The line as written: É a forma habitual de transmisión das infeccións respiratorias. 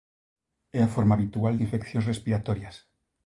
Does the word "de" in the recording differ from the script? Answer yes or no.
yes